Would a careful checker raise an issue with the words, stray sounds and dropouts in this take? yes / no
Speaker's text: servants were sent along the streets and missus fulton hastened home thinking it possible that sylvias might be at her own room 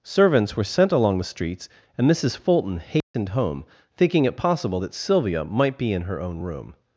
yes